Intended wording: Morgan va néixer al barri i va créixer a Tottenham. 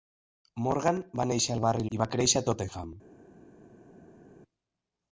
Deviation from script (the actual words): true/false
false